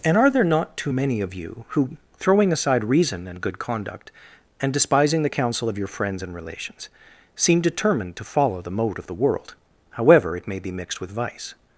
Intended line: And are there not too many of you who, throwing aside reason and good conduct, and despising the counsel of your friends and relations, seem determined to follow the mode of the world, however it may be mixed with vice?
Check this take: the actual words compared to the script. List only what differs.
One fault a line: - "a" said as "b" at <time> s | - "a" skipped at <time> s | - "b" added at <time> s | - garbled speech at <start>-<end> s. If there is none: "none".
none